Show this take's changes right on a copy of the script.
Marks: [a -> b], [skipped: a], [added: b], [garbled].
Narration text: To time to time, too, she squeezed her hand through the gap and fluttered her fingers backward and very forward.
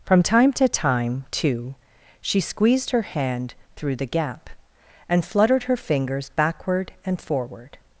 [To -> From] time to time, too, she squeezed her hand through the gap and fluttered her fingers backward and [skipped: very] forward.